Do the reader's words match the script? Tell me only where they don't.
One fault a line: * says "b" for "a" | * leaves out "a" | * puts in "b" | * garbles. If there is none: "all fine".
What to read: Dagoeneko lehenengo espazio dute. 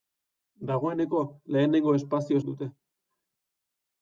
all fine